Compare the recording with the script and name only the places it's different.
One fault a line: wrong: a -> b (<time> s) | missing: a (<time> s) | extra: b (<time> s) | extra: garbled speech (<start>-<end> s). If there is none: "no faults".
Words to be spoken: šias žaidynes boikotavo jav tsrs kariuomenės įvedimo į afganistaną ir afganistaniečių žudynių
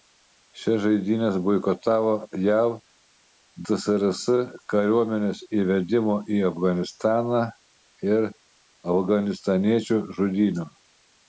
no faults